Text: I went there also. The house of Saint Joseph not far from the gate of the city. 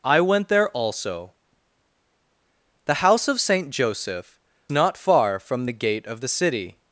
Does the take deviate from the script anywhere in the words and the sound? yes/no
no